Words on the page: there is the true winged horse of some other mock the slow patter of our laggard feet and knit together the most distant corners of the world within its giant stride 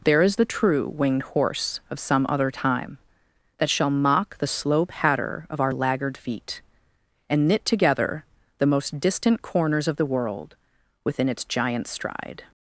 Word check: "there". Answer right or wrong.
right